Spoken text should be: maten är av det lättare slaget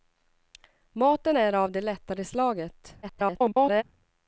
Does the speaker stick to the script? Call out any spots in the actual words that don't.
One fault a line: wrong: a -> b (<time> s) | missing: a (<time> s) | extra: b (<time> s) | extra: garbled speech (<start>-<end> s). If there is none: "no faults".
extra: garbled speech (3.0-3.8 s)